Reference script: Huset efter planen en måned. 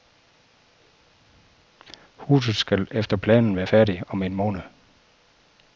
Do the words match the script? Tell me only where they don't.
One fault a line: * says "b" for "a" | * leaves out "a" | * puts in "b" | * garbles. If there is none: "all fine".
* puts in "skal"
* puts in "være færdigt om"